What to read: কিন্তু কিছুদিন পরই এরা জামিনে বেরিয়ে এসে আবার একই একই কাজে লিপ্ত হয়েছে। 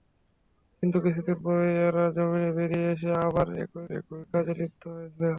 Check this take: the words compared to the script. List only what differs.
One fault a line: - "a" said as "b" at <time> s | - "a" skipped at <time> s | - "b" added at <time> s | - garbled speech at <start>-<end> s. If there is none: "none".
none